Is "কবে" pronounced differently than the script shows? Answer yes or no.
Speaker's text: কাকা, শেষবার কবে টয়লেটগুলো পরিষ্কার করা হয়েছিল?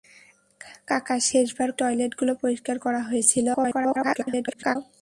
yes